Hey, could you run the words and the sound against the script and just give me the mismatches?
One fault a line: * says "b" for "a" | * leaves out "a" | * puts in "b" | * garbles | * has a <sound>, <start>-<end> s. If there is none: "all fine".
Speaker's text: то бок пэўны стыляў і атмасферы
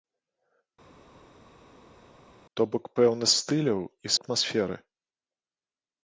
all fine